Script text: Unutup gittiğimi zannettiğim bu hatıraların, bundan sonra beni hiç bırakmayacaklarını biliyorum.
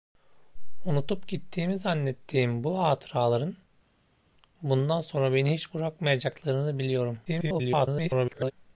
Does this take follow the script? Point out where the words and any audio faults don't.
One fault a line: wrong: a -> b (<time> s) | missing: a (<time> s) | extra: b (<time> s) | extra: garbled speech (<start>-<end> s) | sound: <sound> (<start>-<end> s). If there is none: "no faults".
extra: garbled speech (7.3-8.5 s)